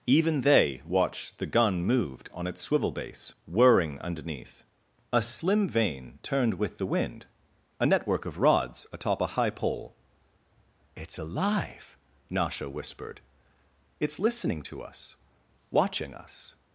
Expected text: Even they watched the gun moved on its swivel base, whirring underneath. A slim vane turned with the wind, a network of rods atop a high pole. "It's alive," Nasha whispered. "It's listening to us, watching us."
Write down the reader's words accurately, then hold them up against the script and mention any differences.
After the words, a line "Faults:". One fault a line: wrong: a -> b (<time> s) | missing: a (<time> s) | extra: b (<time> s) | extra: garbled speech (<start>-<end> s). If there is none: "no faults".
Even they watched the gun moved on its swivel base, whirring underneath. A slim vane turned with the wind, a network of rods atop a high pole. "It's alive," Nasha whispered. "It's listening to us, watching us."
Faults:
no faults